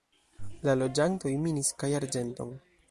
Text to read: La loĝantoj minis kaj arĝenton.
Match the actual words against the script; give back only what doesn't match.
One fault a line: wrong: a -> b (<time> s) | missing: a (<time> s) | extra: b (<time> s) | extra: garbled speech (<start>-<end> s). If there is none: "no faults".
no faults